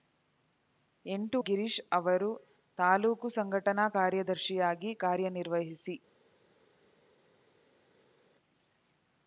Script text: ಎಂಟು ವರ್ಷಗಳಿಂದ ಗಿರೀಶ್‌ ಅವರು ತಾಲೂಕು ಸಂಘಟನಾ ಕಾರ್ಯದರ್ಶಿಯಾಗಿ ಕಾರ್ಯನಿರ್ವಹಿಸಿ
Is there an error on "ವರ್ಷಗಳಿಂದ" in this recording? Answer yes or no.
yes